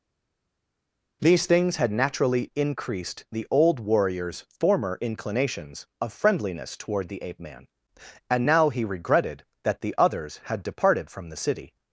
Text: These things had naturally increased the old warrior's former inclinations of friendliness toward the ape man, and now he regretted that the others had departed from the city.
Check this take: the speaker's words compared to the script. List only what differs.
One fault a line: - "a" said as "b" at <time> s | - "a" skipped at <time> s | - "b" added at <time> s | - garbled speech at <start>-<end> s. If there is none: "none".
none